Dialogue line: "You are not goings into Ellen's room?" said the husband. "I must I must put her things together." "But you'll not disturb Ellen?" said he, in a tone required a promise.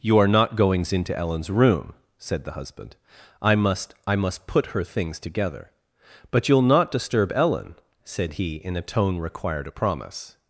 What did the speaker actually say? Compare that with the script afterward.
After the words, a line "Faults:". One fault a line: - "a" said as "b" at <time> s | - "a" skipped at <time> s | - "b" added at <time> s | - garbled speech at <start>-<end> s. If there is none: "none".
"You are not goings into Ellen's room?" said the husband. "I must I must put her things together." "But you'll not disturb Ellen?" said he, in a tone required a promise.
Faults:
none